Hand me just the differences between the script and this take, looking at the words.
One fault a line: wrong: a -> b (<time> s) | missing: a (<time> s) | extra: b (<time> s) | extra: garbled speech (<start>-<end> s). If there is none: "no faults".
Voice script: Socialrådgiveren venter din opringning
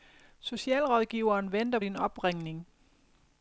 no faults